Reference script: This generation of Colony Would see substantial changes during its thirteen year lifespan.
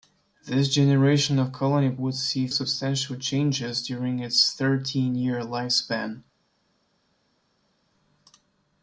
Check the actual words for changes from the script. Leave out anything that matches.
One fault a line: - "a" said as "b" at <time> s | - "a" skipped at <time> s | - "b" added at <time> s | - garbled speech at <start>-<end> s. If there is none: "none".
none